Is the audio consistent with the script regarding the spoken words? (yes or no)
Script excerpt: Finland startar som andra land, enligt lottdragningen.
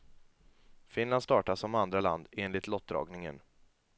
yes